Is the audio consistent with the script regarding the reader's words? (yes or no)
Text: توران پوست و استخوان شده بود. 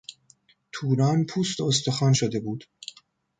yes